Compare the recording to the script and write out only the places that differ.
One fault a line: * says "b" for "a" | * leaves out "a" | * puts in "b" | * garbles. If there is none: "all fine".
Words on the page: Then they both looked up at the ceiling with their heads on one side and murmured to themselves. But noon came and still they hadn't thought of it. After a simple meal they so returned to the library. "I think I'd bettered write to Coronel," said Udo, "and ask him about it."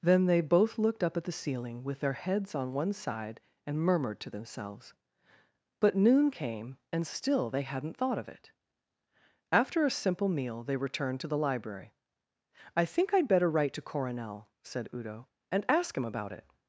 * leaves out "so"
* says "better" for "bettered"